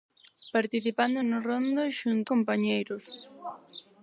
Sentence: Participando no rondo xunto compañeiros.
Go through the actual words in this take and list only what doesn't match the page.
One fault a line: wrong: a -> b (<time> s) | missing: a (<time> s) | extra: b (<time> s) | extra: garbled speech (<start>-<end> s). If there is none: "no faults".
no faults